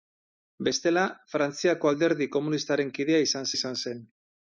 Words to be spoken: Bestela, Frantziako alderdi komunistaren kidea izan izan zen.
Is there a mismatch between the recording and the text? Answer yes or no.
no